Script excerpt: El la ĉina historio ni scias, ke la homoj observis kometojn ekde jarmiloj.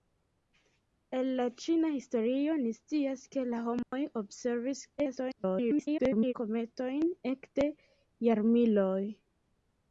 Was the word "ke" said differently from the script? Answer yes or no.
no